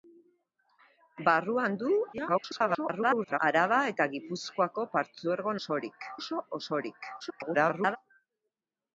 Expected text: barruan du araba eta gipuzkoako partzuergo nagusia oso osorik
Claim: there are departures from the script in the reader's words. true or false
true